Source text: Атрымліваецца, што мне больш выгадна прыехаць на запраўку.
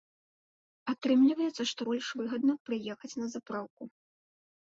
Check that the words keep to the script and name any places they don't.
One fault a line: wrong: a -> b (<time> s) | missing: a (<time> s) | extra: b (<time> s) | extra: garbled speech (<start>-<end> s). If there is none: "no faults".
missing: мне (1.8 s)